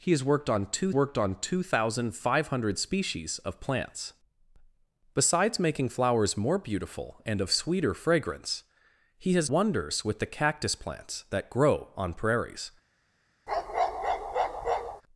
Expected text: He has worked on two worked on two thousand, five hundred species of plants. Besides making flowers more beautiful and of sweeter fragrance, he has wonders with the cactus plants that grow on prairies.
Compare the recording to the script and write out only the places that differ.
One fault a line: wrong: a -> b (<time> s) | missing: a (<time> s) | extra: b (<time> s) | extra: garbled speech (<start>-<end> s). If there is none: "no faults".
no faults